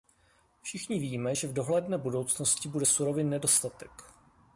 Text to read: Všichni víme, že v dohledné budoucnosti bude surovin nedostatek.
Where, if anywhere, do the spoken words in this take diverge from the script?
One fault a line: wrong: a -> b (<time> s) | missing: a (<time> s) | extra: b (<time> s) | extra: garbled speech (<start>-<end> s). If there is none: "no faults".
no faults